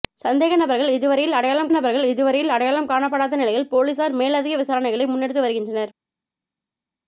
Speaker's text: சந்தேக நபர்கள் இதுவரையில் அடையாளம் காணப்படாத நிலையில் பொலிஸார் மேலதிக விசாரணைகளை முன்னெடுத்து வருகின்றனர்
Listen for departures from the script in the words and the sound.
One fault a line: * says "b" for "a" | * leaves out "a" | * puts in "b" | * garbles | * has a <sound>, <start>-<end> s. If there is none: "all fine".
* puts in "நபர்கள் இதுவரையில் அடையாளம்"